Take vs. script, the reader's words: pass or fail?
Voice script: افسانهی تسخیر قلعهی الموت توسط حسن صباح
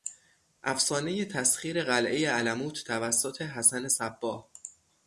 pass